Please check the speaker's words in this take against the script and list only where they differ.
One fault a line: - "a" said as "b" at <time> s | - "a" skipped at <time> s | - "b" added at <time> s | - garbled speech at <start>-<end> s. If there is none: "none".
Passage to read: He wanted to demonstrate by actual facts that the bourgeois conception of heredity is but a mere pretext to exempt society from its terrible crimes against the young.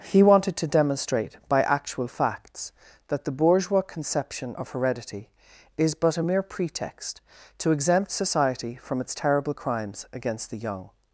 none